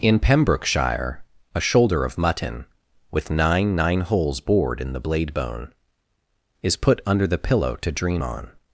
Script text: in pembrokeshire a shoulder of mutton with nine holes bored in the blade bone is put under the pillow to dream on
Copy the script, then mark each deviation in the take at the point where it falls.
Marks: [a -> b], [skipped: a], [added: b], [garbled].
in pembrokeshire a shoulder of mutton with nine [added: nine] holes bored in the blade bone is put under the pillow to dream on